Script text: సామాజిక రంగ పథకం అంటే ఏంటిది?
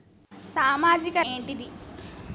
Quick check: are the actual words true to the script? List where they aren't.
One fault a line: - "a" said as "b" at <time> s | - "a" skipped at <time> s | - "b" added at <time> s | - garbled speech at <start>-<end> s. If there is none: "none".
- "రంగ పథకం అంటే" skipped at 1.2 s